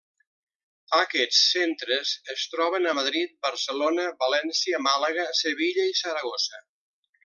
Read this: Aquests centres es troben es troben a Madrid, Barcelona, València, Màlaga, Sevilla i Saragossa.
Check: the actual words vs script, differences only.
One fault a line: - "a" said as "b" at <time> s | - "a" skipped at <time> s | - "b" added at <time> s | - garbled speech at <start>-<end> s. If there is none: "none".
- "es troben" skipped at 2.9 s